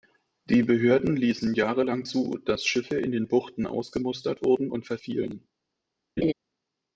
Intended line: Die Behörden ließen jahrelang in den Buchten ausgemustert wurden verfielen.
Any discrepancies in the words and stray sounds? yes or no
yes